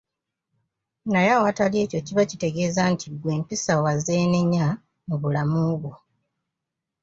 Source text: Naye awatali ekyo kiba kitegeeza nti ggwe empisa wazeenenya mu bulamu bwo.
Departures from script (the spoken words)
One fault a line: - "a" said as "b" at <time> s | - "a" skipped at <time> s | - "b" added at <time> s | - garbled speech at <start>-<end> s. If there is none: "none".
none